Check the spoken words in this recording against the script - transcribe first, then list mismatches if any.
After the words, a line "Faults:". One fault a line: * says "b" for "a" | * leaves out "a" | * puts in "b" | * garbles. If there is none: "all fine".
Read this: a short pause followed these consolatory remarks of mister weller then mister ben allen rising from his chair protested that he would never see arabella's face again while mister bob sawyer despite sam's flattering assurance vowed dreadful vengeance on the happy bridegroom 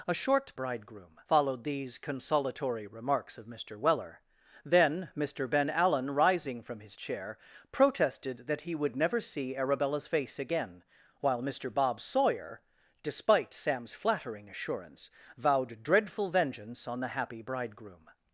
a short bridegroom followed these consolatory remarks of mister weller then mister ben allen rising from his chair protested that he would never see arabella's face again while mister bob sawyer despite sam's flattering assurance vowed dreadful vengeance on the happy bridegroom
Faults:
* says "bridegroom" for "pause"